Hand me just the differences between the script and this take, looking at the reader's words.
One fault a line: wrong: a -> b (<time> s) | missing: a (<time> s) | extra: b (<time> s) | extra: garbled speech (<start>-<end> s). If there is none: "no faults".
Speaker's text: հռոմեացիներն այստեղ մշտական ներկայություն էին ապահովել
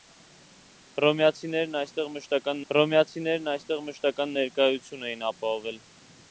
extra: հռոմեացիներն այստեղ մշտական (2.7 s)